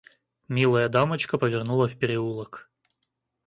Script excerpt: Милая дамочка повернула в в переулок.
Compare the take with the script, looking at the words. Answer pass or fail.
fail